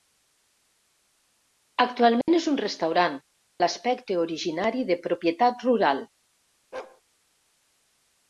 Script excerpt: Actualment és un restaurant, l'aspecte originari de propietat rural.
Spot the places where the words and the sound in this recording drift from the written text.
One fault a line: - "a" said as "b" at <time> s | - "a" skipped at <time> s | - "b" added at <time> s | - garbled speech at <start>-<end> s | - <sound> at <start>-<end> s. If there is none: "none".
- dropout at 2.2-2.3 s
- bark at 6.7-7.0 s